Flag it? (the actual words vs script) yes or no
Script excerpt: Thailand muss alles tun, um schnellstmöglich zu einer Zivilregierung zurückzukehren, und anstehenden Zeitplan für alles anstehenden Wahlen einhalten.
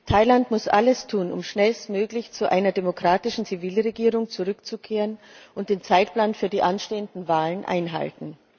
yes